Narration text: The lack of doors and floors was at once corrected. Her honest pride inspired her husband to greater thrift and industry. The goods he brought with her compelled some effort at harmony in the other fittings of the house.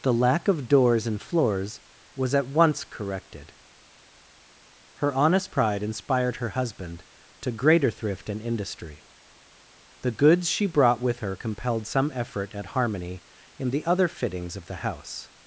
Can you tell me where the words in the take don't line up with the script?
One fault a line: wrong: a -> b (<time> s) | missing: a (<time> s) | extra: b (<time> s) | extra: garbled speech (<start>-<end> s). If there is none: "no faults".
wrong: he -> she (10.5 s)